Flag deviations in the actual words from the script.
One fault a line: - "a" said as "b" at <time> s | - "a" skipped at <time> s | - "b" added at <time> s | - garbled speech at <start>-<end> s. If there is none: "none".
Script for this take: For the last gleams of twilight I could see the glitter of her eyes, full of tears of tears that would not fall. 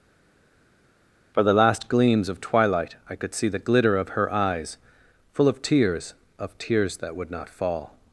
none